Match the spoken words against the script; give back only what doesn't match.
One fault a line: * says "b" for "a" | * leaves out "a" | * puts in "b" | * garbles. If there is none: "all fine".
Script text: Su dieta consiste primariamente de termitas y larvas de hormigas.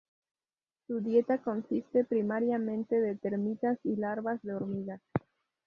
all fine